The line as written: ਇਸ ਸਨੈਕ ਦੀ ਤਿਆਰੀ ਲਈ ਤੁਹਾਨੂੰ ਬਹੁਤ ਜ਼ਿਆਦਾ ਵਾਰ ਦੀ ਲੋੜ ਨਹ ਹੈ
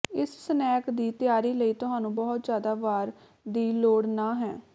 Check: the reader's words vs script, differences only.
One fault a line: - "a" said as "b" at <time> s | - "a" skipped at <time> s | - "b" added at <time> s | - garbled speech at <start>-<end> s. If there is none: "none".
none